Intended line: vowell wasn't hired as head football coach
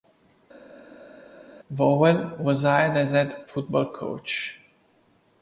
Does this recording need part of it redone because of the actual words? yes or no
yes